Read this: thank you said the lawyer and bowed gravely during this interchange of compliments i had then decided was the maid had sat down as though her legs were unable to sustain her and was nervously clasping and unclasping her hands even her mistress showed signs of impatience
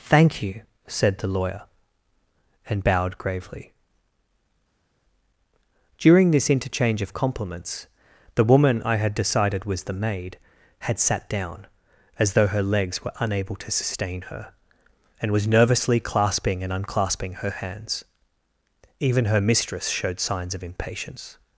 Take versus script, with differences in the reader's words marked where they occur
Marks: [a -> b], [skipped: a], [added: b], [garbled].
thank you said the lawyer and bowed gravely during this interchange of compliments [added: the woman] i had [skipped: then] decided was the maid had sat down as though her legs were unable to sustain her and was nervously clasping and unclasping her hands even her mistress showed signs of impatience